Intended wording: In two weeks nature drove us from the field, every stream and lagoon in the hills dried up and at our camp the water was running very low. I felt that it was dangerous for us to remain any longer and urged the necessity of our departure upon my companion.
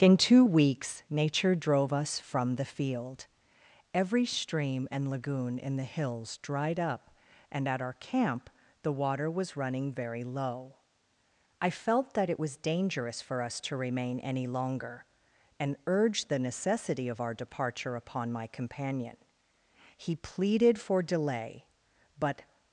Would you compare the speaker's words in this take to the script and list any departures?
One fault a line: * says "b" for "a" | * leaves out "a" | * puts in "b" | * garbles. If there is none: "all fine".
* puts in "He pleaded for delay but"